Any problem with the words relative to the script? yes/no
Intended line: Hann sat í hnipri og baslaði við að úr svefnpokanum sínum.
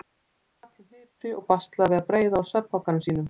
yes